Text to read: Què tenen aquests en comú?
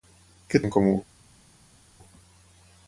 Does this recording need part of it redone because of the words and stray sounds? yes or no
yes